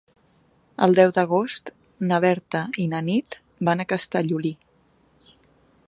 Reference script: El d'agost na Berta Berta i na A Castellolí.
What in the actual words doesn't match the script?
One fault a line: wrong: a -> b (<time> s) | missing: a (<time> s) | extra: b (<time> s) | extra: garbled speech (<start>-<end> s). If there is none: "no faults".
extra: deu (1.0 s)
missing: Berta (2.6 s)
extra: Nit van (3.1 s)